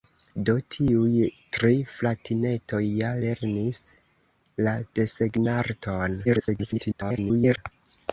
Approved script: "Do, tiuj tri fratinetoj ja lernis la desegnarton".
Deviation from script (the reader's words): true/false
true